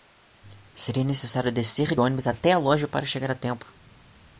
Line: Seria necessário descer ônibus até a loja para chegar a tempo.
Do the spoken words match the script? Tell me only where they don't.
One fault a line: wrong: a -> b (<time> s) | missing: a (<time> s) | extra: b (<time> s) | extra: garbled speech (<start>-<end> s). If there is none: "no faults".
no faults